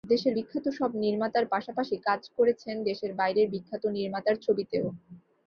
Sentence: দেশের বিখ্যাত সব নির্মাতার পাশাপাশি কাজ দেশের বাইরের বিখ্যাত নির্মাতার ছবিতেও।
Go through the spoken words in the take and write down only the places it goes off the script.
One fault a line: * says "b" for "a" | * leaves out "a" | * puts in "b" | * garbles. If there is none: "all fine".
* puts in "করেছেন"